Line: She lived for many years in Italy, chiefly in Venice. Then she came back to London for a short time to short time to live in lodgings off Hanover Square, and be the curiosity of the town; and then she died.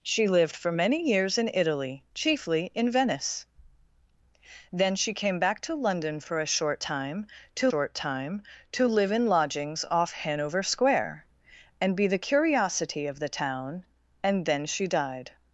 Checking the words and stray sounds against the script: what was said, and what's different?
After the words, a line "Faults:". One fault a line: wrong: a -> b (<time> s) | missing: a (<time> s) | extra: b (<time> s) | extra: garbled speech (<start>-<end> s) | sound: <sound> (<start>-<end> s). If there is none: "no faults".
She lived for many years in Italy, chiefly in Venice. Then she came back to London for a short time to short time to live in lodgings off Hanover Square, and be the curiosity of the town; and then she died.
Faults:
no faults